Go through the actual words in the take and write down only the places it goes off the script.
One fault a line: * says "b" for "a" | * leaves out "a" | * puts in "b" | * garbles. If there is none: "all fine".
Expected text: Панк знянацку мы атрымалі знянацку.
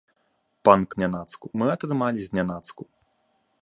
all fine